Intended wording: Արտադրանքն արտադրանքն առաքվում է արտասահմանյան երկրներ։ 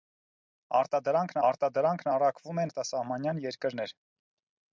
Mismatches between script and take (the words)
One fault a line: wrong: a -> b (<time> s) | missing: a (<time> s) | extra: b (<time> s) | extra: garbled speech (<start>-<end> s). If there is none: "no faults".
no faults